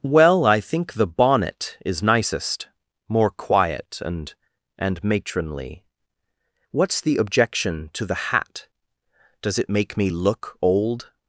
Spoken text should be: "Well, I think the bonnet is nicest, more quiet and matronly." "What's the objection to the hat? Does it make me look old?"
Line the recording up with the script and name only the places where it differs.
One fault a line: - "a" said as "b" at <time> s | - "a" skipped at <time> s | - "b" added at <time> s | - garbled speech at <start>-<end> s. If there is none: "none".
- "and" added at 4.8 s